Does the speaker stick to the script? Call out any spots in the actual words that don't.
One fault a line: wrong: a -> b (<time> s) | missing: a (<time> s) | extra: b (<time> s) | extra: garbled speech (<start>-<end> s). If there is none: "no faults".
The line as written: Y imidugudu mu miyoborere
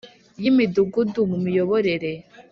no faults